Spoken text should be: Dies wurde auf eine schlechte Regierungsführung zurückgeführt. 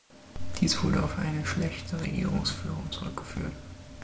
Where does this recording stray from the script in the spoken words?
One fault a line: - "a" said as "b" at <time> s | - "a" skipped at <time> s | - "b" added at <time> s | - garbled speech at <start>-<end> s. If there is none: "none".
none